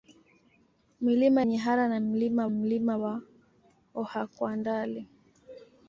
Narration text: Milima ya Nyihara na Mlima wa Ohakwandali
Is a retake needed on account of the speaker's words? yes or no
yes